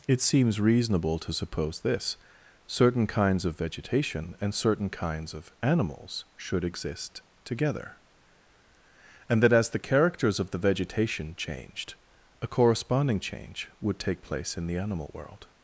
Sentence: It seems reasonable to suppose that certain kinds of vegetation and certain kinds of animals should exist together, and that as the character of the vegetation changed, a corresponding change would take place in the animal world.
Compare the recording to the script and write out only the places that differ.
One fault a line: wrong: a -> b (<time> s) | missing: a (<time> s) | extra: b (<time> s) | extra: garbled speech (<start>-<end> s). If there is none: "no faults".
wrong: that -> this (1.8 s)
wrong: character -> characters (9.8 s)